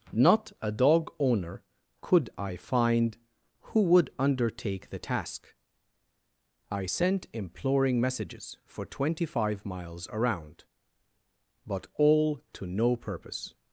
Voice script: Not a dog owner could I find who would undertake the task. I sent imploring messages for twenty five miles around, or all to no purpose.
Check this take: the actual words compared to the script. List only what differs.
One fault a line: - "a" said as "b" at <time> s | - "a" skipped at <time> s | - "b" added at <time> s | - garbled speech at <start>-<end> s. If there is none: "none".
- "or" said as "but" at 11.6 s